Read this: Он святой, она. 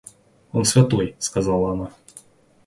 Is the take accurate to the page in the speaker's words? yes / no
no